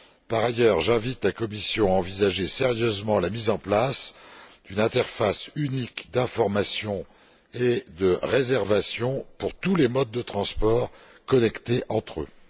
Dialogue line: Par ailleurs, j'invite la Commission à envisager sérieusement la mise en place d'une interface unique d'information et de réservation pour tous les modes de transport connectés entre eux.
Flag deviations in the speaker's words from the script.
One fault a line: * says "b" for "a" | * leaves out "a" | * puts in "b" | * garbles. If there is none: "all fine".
all fine